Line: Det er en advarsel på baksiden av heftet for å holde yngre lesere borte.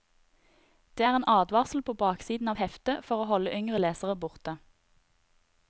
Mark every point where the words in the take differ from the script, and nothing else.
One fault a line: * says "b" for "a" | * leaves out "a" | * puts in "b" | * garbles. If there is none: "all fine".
all fine